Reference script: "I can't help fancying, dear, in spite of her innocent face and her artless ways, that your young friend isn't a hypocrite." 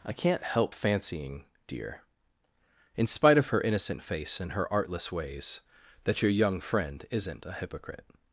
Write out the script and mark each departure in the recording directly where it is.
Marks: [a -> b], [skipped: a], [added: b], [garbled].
"I can't help fancying, dear, in spite of her innocent face and her artless ways, that your young friend isn't a hypocrite."